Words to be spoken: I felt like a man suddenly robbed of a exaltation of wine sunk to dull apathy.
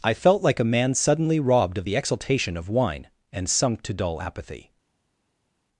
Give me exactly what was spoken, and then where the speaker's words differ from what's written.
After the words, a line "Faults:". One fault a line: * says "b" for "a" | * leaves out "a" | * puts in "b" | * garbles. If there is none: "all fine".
I felt like a man suddenly robbed of the exaltation of wine and sunk to dull apathy.
Faults:
* says "the" for "a"
* puts in "and"